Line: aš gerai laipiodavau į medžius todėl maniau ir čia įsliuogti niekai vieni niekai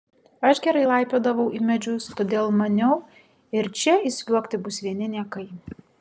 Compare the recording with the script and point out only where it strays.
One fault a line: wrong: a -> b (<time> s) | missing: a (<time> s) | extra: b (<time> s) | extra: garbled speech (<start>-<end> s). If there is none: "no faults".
wrong: niekai -> bus (4.7 s)